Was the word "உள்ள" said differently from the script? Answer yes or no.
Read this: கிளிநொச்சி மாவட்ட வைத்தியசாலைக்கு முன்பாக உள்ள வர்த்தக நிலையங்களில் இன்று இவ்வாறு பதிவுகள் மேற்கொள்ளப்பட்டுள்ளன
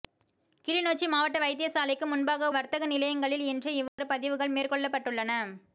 yes